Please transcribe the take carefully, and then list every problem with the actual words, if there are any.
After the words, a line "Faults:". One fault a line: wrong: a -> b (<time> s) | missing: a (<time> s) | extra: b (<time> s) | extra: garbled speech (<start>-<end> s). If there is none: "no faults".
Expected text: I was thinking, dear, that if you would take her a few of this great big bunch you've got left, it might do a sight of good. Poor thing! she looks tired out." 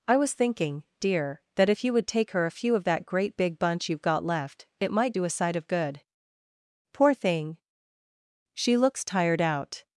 I was thinking, dear, that if you would take her a few of that great big bunch you've got left, it might do a sight of good. Poor thing! she looks tired out."
Faults:
wrong: this -> that (2.9 s)